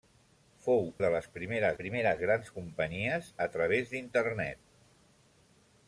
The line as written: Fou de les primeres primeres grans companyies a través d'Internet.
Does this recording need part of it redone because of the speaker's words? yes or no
no